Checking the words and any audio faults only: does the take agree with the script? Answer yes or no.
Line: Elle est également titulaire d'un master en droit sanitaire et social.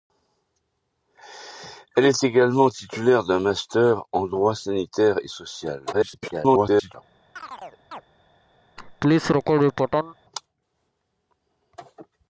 no